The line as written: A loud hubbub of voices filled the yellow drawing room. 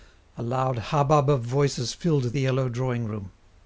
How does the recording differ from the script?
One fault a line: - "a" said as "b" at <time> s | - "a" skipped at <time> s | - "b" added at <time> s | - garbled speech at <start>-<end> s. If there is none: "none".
none